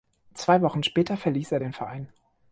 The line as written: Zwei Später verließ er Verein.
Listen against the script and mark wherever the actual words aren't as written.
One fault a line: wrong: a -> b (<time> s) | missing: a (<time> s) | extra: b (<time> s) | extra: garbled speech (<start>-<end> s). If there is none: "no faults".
extra: Wochen (0.6 s)
extra: den (1.6 s)